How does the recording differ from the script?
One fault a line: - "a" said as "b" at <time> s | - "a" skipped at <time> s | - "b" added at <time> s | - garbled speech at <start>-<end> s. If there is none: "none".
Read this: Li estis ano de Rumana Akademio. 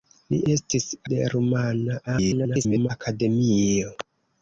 - "ano" skipped at 0.9 s
- garbled speech at 2.1-2.9 s